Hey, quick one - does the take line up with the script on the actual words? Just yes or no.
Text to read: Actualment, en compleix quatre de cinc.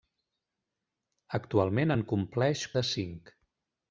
no